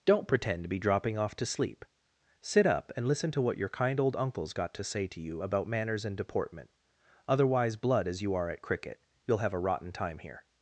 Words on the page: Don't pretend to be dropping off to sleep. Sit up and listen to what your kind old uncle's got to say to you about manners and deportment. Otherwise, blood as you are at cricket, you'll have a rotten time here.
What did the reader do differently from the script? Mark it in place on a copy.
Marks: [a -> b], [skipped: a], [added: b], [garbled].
Don't pretend to be dropping off to sleep. Sit up and listen to what your kind old uncle's got to say to you about manners and deportment. Otherwise, blood as you are at cricket, you'll have a rotten time here.